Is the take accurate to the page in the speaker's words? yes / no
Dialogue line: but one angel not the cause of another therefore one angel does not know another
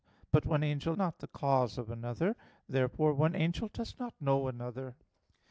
yes